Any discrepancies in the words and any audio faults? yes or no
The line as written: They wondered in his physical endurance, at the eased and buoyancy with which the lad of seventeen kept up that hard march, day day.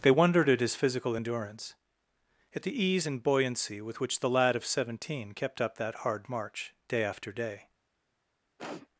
yes